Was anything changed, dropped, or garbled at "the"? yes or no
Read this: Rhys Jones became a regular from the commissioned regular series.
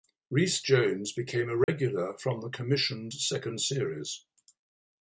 no